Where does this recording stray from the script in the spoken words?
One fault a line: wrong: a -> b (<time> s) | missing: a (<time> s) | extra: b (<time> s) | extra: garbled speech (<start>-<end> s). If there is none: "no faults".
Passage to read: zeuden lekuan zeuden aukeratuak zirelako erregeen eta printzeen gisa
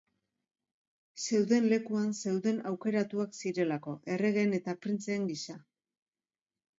no faults